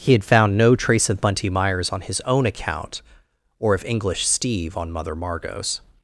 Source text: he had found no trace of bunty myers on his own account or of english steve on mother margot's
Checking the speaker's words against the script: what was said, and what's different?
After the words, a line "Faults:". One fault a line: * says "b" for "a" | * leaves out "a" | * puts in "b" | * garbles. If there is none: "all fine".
he had found no trace of bunty myers on his own account or of english steve on mother margot's
Faults:
all fine